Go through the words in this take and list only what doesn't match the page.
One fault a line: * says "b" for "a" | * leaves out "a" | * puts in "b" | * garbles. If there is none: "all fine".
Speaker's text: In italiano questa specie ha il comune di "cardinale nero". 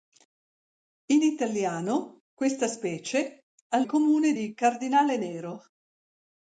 all fine